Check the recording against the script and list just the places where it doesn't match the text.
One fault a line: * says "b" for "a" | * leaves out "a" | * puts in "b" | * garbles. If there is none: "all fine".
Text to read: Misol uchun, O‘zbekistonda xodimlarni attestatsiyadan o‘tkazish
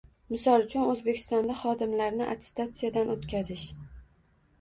all fine